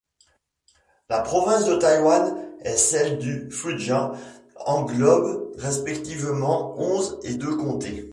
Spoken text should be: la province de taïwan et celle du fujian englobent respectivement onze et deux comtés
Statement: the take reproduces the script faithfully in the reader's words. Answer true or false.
true